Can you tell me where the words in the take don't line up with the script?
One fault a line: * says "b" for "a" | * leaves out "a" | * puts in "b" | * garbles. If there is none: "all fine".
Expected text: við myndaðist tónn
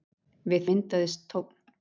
all fine